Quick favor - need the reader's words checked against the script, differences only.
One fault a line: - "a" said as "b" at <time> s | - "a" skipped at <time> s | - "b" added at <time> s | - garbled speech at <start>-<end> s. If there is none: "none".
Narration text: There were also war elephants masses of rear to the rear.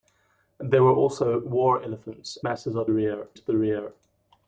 none